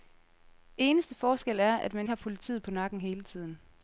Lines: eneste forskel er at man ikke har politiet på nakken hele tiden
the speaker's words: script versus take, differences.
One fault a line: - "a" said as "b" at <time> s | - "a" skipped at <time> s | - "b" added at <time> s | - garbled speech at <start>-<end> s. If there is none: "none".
- "ikke" skipped at 2.1 s